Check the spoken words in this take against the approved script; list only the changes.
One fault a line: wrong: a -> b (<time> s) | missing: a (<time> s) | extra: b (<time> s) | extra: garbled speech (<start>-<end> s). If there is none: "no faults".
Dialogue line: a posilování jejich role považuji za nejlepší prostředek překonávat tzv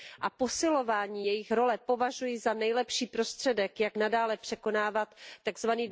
extra: jak nadále (3.8 s)